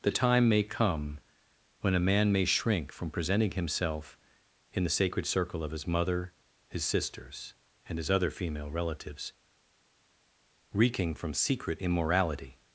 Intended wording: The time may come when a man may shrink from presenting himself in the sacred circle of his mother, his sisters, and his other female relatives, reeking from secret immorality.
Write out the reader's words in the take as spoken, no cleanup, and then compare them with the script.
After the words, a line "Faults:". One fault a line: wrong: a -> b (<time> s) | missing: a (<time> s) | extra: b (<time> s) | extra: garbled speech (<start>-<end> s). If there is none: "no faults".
The time may come when a man may shrink from presenting himself in the sacred circle of his mother, his sisters, and his other female relatives, reeking from secret immorality.
Faults:
no faults